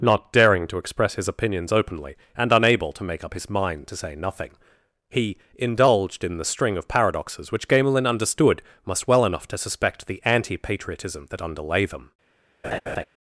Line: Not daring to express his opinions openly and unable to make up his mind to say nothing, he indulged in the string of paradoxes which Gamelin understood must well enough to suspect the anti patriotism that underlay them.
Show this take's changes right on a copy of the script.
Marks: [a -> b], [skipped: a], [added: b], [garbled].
Not daring to express his opinions openly and unable to make up his mind to say nothing, he indulged in the string of paradoxes which Gamelin understood must well enough to suspect the anti patriotism that underlay them.